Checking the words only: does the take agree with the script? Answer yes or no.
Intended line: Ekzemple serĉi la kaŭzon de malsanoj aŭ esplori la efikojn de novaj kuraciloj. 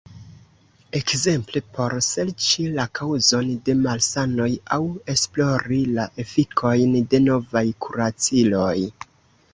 no